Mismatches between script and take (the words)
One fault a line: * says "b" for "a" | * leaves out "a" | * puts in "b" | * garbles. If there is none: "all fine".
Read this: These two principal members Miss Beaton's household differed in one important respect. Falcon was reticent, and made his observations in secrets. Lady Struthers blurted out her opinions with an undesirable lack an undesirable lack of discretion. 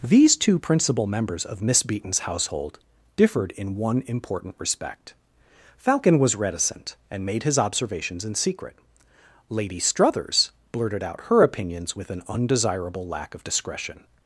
* puts in "of"
* says "secret" for "secrets"
* leaves out "an undesirable lack"